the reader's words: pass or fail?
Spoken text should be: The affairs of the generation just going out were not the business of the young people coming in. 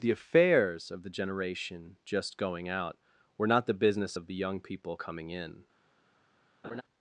pass